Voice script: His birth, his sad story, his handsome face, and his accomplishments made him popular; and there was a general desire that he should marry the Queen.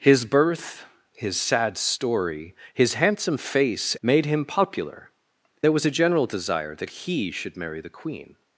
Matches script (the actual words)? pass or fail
fail